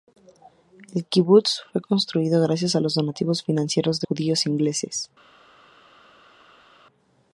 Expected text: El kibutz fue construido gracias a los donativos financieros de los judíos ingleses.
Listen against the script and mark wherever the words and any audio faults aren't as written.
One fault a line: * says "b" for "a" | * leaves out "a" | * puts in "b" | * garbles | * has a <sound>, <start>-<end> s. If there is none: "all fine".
* leaves out "los"